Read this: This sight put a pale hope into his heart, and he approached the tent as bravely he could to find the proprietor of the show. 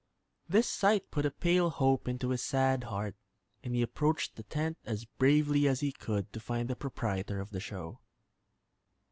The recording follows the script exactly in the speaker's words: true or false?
false